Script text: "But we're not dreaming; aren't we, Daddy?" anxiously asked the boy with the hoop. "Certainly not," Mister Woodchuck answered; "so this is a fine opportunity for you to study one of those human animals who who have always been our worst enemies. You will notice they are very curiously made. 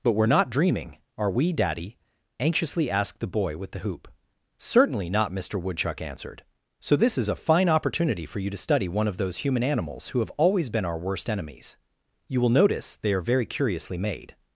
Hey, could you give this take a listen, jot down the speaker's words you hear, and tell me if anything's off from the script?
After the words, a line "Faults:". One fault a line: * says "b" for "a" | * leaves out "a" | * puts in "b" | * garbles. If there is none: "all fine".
"But we're not dreaming; are we, Daddy?" anxiously asked the boy with the hoop. "Certainly not," Mister Woodchuck answered; "so this is a fine opportunity for you to study one of those human animals who have always been our worst enemies. You will notice they are very curiously made.
Faults:
* says "are" for "aren't"
* leaves out "who"